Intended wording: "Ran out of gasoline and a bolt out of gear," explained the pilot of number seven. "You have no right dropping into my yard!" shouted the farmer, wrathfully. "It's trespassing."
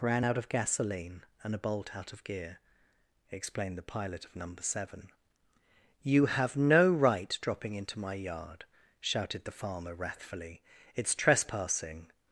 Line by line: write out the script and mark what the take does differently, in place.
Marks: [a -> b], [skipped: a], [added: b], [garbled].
"Ran out of gasoline and a bolt out of gear," explained the pilot of number seven. "You have no right dropping into my yard!" shouted the farmer, wrathfully. "It's trespassing."